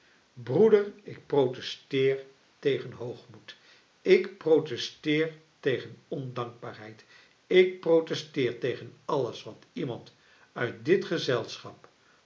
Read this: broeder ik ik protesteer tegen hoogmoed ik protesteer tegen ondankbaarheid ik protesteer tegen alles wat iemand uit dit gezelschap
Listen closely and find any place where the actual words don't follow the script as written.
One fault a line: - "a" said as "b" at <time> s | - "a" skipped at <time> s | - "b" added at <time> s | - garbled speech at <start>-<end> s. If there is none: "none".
- "ik" skipped at 1.2 s